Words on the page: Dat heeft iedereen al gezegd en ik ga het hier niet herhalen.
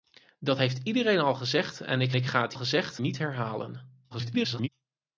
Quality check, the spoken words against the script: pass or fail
fail